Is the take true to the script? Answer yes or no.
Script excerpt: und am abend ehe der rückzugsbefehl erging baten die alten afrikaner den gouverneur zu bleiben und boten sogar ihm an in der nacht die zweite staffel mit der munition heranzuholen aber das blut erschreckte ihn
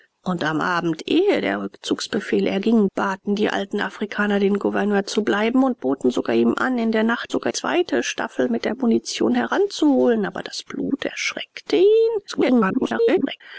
no